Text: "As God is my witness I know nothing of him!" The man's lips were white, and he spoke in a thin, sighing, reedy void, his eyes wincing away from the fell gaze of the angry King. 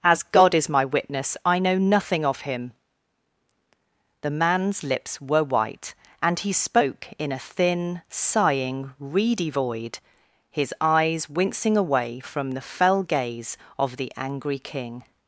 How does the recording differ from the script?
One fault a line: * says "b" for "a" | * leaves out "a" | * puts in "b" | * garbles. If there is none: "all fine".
all fine